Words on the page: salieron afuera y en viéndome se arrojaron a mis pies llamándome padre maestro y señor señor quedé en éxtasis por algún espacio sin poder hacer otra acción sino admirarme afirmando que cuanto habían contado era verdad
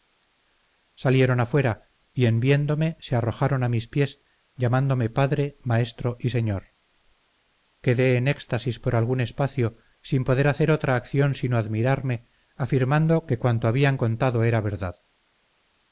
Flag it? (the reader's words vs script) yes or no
yes